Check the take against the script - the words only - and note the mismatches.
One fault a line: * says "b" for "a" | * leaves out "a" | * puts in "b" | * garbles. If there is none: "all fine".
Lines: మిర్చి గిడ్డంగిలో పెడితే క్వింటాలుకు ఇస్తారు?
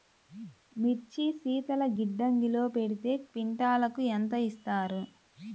* puts in "శీతల"
* puts in "ఎంత"